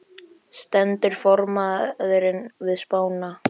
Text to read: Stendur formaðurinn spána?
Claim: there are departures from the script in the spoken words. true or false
true